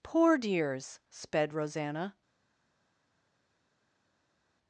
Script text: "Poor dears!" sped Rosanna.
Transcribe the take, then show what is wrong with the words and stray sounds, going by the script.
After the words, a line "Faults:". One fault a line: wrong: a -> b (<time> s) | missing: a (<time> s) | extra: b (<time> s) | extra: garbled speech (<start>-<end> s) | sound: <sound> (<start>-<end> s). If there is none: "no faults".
"Poor dears!" sped Rosanna.
Faults:
no faults